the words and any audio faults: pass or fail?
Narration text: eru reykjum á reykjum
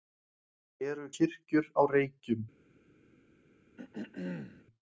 fail